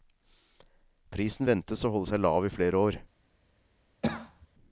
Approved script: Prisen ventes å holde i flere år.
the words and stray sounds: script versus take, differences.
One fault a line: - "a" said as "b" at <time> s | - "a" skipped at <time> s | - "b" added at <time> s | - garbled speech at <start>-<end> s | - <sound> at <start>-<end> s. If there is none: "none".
- "seg lav" added at 2.1 s
- cough at 4.0-4.5 s